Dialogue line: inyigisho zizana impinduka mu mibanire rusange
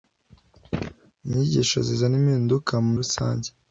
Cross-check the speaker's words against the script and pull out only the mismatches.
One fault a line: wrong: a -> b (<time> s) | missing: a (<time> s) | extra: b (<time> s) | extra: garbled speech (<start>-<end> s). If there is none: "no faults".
missing: mibanire (2.9 s)